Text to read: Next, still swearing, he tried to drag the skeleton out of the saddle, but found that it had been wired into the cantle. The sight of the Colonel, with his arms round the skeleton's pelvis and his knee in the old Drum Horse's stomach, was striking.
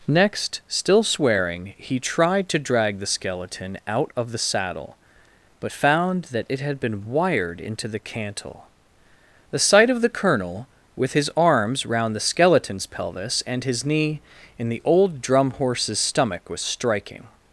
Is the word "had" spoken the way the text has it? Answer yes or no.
yes